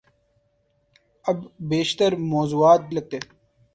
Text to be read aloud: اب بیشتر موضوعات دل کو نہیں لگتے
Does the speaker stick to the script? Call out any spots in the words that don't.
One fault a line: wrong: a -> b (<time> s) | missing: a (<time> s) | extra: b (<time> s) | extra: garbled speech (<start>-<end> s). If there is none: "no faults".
missing: دل کو نہیں (2.8 s)